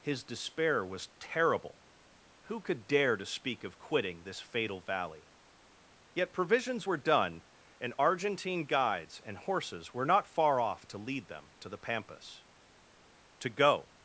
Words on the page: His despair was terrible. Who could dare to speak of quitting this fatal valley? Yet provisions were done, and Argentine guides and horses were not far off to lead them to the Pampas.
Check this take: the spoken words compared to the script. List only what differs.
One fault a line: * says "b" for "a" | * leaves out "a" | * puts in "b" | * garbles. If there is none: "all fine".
* puts in "To go"